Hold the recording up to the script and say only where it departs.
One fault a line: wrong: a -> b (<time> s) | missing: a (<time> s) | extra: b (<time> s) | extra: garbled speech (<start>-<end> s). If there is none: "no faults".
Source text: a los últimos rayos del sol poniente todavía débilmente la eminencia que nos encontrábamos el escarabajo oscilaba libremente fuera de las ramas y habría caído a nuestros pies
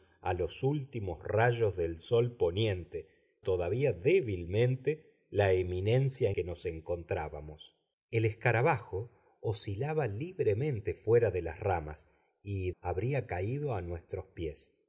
no faults